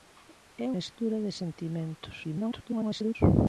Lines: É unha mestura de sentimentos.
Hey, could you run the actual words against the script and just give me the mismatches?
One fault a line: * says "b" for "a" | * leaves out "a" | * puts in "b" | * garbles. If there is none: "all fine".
* leaves out "unha"
* garbles